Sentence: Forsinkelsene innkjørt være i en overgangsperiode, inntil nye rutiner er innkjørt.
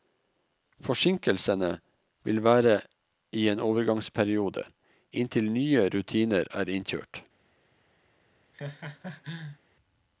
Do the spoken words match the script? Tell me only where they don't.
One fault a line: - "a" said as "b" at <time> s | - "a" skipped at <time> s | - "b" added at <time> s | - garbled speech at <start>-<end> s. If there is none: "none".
- "innkjørt" said as "vil" at 2.2 s